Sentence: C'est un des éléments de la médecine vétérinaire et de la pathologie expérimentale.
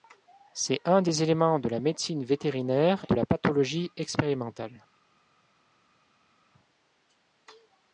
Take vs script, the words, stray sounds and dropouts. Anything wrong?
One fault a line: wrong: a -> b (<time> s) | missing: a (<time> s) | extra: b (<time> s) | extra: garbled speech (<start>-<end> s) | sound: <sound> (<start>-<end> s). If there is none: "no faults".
missing: et (3.0 s)